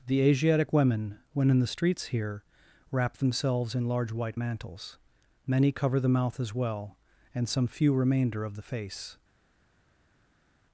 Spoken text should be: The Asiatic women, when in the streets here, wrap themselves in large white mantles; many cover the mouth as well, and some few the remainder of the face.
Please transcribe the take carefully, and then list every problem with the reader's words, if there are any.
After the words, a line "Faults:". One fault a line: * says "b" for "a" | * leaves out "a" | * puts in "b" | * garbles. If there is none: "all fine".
The Asiatic women, when in the streets here, wrap themselves in large white mantles; many cover the mouth as well, and some few remainder of the face.
Faults:
* leaves out "the"